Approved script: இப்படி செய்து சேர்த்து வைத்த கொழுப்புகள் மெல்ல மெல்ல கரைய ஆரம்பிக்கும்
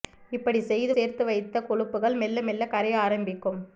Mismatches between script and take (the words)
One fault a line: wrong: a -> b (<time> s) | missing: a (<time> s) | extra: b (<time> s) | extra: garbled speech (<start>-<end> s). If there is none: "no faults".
no faults